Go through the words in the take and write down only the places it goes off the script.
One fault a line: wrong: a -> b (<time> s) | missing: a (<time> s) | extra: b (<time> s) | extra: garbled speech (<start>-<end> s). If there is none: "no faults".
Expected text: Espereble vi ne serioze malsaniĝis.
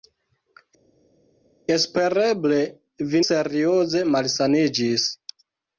missing: ne (3.2 s)